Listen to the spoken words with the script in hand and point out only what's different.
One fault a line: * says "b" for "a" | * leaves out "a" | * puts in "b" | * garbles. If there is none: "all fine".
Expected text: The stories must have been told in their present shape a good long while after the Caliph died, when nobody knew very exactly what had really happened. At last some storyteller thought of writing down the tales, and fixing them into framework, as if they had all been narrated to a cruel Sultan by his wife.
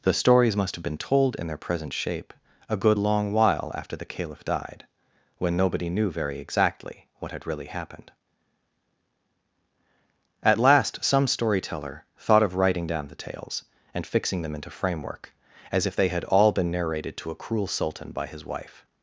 all fine